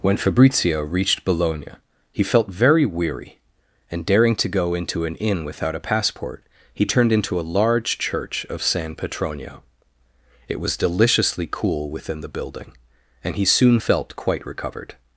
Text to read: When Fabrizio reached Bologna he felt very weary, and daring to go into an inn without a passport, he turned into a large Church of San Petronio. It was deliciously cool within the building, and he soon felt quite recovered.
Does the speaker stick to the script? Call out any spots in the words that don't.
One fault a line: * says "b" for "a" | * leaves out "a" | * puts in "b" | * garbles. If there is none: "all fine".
all fine